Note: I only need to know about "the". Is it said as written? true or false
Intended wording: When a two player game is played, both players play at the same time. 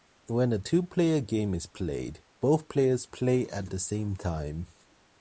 true